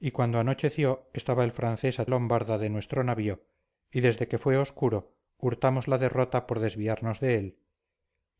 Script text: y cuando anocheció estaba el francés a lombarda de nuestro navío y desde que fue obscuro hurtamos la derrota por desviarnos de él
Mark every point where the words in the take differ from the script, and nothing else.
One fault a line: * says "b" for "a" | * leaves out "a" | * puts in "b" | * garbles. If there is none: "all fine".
all fine